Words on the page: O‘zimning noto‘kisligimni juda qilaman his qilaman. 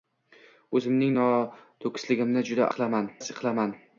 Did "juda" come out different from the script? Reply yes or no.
no